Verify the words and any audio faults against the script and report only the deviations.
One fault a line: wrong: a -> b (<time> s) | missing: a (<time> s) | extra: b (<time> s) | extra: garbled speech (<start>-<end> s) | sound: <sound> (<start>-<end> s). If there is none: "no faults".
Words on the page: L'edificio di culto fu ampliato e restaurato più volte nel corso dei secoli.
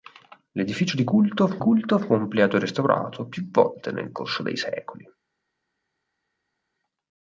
extra: culto fu (1.6 s)